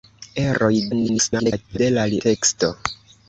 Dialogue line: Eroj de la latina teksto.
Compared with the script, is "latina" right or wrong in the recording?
wrong